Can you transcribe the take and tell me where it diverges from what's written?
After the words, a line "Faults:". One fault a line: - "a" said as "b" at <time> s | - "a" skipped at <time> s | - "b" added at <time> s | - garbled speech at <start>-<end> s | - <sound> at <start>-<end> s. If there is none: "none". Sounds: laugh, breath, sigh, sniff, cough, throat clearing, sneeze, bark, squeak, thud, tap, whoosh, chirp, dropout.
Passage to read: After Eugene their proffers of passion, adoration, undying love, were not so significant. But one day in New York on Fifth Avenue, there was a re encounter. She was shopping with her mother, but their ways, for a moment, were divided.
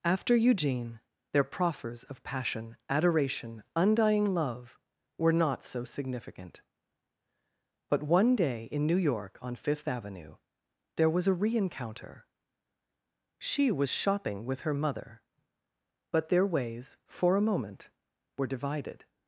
After Eugene their proffers of passion, adoration, undying love, were not so significant. But one day in New York on Fifth Avenue, there was a re encounter. She was shopping with her mother, but their ways, for a moment, were divided.
Faults:
none